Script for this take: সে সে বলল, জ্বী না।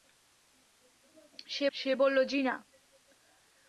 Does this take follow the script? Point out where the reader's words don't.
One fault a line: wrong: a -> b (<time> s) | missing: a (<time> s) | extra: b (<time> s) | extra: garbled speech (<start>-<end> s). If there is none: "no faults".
no faults